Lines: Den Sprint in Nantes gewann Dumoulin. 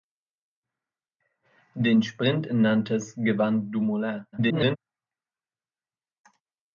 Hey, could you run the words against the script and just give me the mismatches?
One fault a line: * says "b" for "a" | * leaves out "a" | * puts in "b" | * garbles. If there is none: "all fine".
* garbles